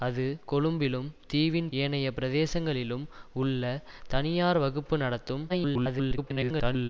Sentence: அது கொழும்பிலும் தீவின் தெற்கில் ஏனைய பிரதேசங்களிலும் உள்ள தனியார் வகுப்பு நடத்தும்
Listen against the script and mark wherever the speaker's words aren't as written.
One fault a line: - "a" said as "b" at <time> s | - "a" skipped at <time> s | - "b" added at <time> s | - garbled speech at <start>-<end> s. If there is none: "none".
- "தெற்கில்" skipped at 1.7 s
- garbled speech at 5.5-6.9 s